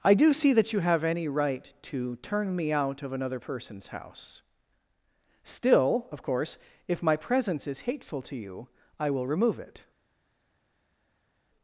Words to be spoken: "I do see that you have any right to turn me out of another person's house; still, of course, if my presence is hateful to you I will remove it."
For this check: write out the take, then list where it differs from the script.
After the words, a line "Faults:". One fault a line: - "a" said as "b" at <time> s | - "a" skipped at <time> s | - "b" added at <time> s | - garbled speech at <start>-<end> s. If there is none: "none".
"I do see that you have any right to turn me out of another person's house; still, of course, if my presence is hateful to you I will remove it."
Faults:
none